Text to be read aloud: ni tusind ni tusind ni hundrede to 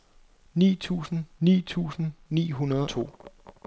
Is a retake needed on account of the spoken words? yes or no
no